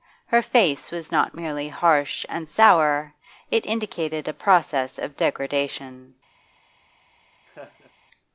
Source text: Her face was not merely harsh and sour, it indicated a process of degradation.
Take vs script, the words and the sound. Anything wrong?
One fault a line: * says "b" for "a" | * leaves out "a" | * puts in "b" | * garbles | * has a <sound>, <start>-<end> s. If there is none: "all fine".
* has a laugh, 7.5-7.9 s